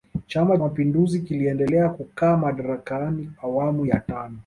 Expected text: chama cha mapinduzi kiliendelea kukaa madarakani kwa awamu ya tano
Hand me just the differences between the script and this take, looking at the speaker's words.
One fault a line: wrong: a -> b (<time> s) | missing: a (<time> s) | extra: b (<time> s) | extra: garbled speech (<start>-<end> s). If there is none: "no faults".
missing: cha (0.6 s)
missing: kwa (3.3 s)